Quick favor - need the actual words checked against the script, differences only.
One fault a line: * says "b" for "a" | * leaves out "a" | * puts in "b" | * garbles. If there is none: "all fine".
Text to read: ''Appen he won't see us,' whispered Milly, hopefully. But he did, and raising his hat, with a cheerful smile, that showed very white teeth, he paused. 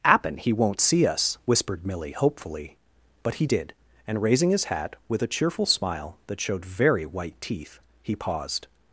all fine